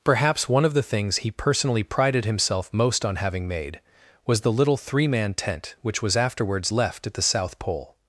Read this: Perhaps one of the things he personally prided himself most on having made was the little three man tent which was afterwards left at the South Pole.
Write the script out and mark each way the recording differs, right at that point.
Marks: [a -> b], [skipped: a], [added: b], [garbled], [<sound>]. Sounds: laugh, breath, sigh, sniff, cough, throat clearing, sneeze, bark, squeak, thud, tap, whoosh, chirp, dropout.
Perhaps one of the things he personally prided himself most on having made was the little three man tent which was afterwards left at the South Pole.